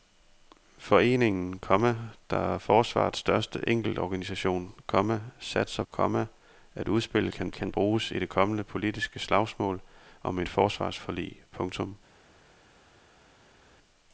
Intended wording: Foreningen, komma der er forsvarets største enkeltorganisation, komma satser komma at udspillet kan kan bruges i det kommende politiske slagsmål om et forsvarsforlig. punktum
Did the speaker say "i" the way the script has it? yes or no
yes